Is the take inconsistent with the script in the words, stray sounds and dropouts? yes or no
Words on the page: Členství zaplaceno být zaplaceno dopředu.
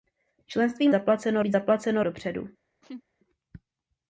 yes